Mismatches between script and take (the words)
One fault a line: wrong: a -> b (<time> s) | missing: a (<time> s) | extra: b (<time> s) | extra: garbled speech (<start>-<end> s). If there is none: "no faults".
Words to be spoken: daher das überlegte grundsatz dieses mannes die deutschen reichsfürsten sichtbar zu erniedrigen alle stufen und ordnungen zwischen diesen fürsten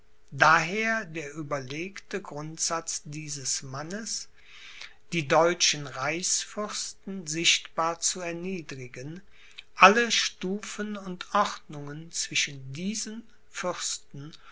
wrong: das -> der (1.1 s)